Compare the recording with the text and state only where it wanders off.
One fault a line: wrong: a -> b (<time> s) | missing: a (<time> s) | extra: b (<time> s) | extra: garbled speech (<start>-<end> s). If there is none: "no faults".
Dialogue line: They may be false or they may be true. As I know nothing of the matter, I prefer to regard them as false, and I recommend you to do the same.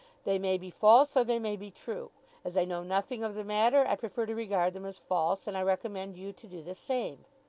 no faults